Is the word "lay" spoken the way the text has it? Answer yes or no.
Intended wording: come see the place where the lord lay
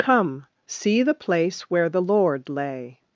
yes